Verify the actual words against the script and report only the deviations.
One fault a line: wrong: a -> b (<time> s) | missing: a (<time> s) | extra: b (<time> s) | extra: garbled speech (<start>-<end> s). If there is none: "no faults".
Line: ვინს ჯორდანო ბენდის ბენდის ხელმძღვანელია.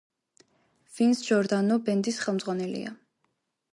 missing: ბენდის (2.2 s)